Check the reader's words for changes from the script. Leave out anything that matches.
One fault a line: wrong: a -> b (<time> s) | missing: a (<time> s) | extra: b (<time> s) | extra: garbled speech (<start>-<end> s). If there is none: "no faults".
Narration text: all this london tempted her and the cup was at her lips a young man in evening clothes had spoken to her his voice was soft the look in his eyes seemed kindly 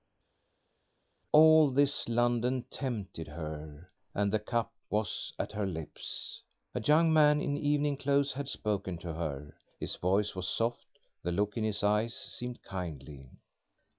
no faults